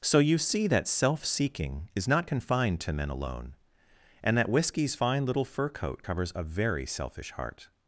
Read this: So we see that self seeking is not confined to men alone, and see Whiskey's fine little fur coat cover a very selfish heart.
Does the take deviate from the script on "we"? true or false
true